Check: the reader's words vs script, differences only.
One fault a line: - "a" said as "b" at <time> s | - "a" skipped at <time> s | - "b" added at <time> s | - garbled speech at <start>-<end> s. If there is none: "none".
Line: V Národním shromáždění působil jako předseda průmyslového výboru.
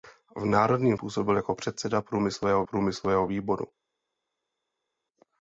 - "shromáždění" skipped at 1.0 s
- "průmyslového" added at 2.6 s